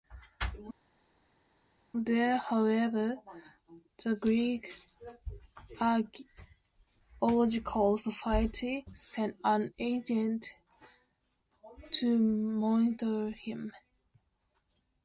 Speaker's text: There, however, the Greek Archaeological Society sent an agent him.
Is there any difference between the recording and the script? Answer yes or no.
yes